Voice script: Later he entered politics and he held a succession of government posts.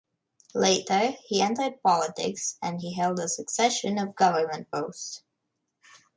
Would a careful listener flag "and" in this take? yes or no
no